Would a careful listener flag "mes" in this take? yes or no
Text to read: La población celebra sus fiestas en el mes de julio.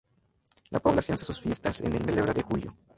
yes